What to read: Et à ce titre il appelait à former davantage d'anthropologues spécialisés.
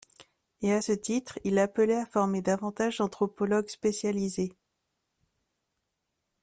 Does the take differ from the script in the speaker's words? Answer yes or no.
no